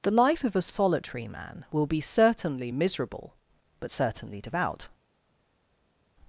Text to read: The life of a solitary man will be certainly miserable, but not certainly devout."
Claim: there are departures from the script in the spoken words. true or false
true